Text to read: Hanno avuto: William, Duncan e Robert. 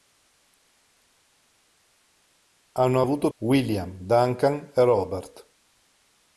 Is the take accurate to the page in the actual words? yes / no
yes